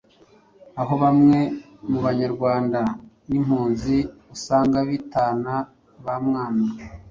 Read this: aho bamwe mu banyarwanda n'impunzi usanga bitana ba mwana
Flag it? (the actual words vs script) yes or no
no